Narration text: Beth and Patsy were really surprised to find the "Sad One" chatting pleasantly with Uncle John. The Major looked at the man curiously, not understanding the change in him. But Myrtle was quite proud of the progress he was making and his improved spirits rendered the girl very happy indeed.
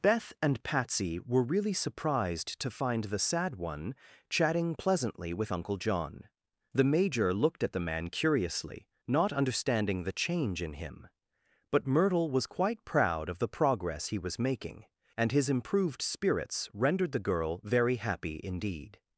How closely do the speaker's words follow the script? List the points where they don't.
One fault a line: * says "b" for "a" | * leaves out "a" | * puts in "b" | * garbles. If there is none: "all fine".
all fine